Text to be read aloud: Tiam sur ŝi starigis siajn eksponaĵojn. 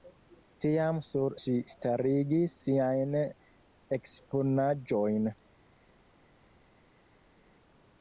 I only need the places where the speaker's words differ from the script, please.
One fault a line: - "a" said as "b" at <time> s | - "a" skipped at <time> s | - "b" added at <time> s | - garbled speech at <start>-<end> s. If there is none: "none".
none